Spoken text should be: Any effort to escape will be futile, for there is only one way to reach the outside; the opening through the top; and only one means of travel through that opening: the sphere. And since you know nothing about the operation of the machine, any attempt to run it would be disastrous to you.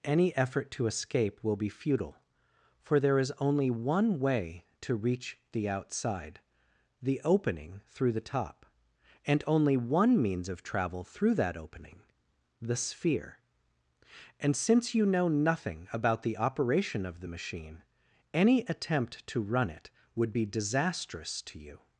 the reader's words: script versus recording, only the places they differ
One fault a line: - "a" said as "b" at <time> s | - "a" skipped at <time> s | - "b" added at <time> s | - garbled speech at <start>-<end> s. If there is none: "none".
none